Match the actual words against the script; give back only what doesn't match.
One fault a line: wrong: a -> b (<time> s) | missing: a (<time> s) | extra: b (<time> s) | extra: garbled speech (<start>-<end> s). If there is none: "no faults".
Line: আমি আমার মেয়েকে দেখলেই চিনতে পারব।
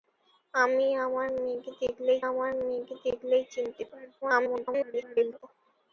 extra: আমার মেয়েকে দেখলেই (2.3 s)
extra: garbled speech (4.2-5.4 s)